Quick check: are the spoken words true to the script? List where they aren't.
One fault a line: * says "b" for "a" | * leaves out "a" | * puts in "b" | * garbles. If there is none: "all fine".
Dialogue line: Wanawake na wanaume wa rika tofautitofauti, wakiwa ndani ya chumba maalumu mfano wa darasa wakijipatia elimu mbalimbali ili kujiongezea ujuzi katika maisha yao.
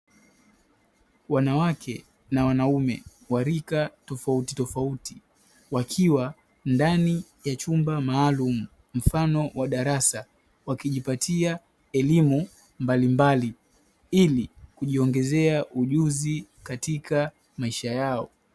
all fine